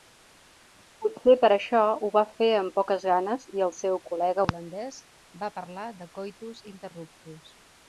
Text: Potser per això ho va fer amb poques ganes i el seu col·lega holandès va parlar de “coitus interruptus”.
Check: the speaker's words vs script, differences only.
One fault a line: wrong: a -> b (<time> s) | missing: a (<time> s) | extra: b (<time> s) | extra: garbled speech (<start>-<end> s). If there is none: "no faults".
no faults